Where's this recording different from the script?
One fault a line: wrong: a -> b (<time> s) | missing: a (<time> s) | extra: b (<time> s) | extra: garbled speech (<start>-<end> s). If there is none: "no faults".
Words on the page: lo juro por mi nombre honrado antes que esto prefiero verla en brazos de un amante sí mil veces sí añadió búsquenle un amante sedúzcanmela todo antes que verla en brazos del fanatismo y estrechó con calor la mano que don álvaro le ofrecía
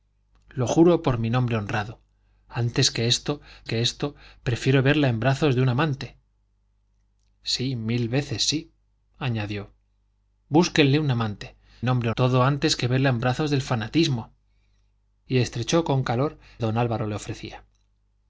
extra: que esto (3.6 s)
wrong: sedúzcanmela -> nombre (11.8 s)
missing: la mano que (16.4 s)